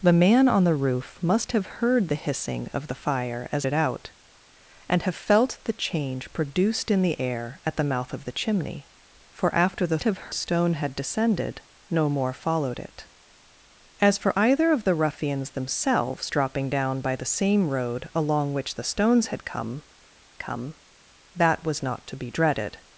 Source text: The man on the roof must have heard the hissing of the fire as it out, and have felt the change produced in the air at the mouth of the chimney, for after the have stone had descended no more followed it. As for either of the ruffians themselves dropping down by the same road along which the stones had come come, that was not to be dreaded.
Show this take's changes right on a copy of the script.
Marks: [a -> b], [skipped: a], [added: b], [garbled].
The man on the roof must have heard the hissing of the fire as it out, and have felt the change produced in the air at the mouth of the chimney, for after the have stone had descended no more followed it. As for either of the ruffians themselves dropping down by the same road along which the stones had come come, that was not to be dreaded.